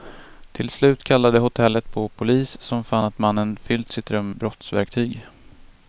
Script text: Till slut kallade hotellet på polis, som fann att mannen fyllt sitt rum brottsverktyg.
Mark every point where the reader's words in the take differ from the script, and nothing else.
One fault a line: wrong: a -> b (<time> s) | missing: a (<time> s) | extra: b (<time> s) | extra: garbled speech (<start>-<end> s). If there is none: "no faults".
no faults